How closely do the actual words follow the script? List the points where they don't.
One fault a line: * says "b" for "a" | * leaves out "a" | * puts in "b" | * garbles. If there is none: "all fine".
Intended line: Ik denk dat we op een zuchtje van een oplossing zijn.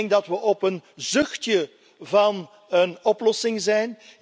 all fine